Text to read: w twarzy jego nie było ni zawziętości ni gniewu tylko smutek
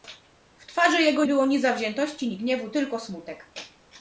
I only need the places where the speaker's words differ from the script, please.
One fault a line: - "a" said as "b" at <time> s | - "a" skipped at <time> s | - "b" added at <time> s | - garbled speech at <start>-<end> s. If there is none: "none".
- "nie" skipped at 1.2 s